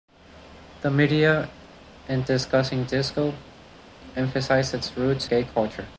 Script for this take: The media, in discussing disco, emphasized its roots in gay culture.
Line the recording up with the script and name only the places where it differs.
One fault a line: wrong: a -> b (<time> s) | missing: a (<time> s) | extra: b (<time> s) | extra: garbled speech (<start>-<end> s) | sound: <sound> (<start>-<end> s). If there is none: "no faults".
missing: in (5.3 s)